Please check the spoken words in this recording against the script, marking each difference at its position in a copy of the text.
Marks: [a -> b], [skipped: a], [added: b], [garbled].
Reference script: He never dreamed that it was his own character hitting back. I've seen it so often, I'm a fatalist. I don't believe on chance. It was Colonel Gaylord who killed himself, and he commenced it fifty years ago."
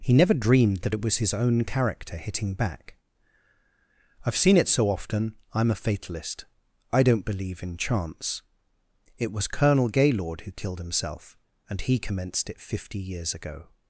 He never dreamed that it was his own character hitting back. I've seen it so often, I'm a fatalist. I don't believe [on -> in] chance. It was Colonel Gaylord who killed himself, and he commenced it fifty years ago."